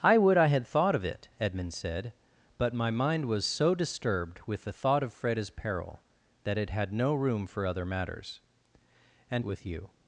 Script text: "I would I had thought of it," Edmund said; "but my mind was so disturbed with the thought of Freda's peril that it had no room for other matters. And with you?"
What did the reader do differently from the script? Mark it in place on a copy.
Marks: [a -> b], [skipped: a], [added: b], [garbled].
"I would I had thought of it," Edmund said; "but my mind was so disturbed with the thought of Freda's peril that it had no room for other matters. And with you?"